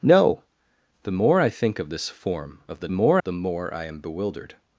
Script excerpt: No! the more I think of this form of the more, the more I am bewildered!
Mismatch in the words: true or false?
false